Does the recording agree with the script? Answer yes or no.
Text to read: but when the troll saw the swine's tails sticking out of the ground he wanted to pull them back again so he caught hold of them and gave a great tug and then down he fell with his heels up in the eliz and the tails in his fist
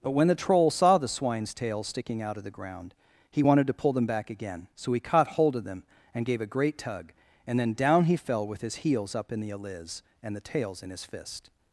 yes